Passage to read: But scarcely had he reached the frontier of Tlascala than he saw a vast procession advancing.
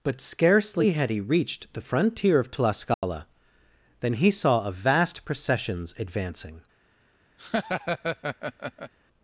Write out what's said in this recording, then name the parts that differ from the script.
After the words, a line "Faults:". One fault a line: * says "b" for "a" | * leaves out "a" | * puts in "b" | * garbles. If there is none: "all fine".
But scarcely had he reached the frontier of Tlascala than he saw a vast processions advancing.
Faults:
* says "processions" for "procession"